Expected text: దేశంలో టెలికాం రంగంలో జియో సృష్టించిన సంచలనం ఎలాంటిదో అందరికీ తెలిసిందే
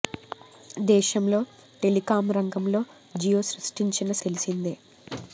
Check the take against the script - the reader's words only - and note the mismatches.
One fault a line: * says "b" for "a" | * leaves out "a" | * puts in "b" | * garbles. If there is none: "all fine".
* leaves out "సంచలనం ఎలాంటిదో అందరికీ"